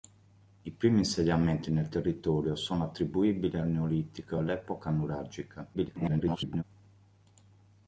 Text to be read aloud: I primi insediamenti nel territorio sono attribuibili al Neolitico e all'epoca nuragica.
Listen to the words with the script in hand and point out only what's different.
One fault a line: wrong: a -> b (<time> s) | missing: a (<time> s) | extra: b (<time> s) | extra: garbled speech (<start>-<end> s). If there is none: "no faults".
extra: garbled speech (5.7-6.6 s)